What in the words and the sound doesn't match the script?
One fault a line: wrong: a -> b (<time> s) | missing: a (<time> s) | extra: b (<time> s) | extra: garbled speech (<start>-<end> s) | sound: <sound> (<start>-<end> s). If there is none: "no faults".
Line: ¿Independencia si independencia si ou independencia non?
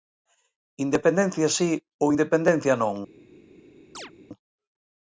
missing: independencia si (1.7 s)
sound: chirp (3.9-4.1 s)